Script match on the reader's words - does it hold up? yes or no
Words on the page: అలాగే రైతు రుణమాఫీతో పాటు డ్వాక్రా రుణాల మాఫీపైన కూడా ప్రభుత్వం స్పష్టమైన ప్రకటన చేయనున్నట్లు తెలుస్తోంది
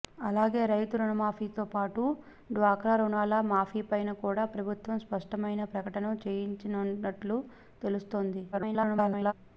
no